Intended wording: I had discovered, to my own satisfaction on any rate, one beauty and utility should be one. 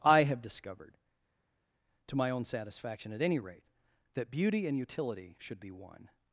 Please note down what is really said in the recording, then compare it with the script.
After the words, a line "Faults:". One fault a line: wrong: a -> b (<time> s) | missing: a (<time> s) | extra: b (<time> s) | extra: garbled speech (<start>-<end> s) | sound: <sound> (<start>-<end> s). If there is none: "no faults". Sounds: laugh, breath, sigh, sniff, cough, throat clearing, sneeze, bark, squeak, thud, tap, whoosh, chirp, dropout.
I have discovered, to my own satisfaction at any rate, that beauty and utility should be one.
Faults:
wrong: had -> have (0.2 s)
wrong: on -> at (3.1 s)
wrong: one -> that (4.1 s)